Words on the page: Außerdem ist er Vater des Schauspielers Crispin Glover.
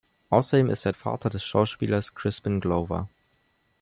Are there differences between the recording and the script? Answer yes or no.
no